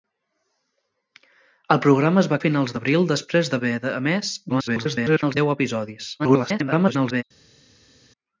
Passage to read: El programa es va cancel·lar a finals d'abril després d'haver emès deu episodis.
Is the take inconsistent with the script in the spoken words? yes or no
yes